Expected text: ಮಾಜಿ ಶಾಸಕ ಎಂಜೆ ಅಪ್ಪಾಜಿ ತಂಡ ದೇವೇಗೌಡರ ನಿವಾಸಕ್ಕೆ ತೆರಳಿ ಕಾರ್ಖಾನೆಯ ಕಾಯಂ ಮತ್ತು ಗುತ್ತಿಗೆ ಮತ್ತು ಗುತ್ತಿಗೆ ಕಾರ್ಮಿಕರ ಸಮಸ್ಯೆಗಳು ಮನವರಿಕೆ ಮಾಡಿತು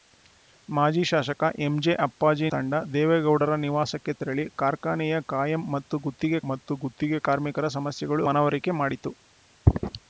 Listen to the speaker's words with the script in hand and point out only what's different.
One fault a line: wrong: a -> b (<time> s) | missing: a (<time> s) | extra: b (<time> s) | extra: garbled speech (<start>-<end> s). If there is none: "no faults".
no faults